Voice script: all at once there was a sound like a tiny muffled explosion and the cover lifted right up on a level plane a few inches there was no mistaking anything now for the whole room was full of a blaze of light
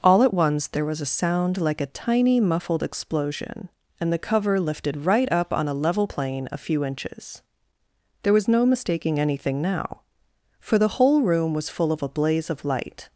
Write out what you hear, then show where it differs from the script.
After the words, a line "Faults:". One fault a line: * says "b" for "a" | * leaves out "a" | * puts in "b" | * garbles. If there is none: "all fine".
all at once there was a sound like a tiny muffled explosion and the cover lifted right up on a level plane a few inches there was no mistaking anything now for the whole room was full of a blaze of light
Faults:
all fine